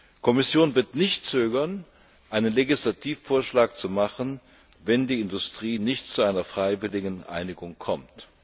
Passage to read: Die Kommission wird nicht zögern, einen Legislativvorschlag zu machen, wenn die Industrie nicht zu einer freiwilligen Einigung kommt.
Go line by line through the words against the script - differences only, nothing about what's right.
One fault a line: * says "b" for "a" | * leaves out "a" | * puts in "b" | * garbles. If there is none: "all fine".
all fine